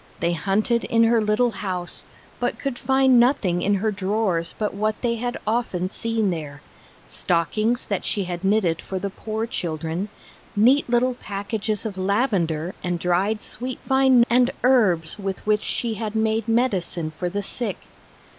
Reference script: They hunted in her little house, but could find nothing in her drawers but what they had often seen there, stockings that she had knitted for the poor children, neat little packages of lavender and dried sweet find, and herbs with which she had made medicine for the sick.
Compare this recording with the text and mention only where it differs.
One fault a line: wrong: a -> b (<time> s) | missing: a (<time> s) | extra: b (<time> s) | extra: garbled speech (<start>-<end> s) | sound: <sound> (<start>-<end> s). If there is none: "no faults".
no faults